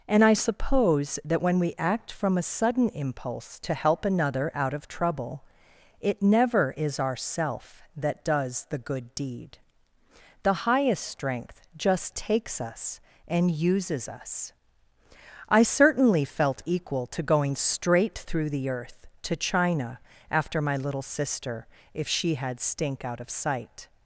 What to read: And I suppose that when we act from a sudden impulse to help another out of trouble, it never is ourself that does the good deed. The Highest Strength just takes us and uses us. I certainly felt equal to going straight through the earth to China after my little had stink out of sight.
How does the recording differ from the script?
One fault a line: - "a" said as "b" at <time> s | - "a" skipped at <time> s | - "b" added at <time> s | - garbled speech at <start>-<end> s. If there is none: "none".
- "sister if she" added at 21.0 s